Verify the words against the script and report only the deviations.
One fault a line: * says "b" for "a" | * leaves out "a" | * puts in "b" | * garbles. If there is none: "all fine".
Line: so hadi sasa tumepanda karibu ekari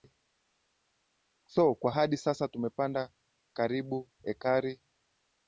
* puts in "kwa"